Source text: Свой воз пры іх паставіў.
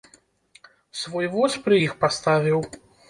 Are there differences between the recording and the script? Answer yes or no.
no